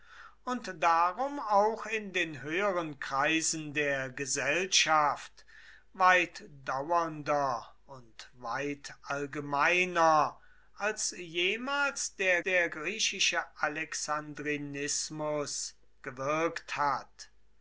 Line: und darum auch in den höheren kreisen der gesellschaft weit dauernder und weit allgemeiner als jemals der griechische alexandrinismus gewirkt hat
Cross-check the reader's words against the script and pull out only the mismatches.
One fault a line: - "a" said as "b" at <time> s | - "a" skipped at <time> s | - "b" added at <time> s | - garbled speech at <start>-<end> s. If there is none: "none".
- "der" added at 12.4 s